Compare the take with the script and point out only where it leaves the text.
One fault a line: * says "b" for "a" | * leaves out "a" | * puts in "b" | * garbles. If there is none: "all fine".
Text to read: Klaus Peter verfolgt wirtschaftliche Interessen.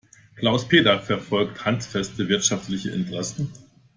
* puts in "handfeste"